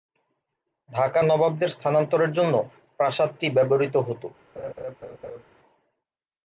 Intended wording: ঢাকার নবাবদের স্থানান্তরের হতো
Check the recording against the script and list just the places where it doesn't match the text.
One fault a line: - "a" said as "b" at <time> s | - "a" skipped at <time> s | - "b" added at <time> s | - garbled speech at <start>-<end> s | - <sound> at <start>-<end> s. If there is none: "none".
- "জন্য প্রাসাদটি ব্যবহৃত" added at 2.3 s
- laugh at 4.6-5.4 s